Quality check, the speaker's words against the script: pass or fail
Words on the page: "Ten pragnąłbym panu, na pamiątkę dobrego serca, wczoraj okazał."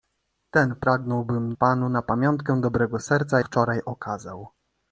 pass